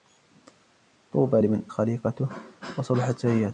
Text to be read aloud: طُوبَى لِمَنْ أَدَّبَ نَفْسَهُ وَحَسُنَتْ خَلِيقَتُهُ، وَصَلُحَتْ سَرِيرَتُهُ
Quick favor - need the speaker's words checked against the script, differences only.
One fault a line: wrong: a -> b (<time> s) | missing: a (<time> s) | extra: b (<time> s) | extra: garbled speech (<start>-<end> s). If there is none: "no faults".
missing: أَدَّبَ نَفْسَهُ وَحَسُنَتْ (1.6 s)